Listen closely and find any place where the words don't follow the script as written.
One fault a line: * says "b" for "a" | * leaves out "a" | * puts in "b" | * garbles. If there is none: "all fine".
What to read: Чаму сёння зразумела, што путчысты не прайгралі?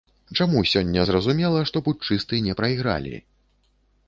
all fine